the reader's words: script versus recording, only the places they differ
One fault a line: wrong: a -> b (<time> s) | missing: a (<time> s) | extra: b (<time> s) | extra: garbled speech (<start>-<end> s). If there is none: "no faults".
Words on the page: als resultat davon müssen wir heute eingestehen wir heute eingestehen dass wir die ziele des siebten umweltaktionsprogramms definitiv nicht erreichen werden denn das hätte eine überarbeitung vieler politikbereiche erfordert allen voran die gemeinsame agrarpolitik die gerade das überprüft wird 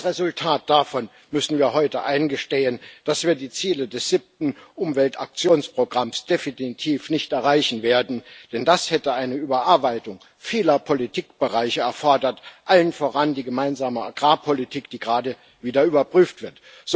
missing: wir heute eingestehen (2.8 s)
wrong: das -> wieder (15.6 s)